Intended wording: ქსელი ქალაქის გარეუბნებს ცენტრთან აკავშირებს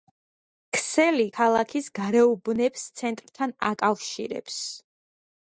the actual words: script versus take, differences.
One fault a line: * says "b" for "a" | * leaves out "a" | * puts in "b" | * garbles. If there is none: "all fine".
all fine